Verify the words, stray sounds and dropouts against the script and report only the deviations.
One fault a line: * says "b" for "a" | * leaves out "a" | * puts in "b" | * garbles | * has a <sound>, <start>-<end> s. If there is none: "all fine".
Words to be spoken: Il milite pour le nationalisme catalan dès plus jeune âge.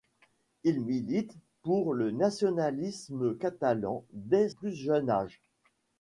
all fine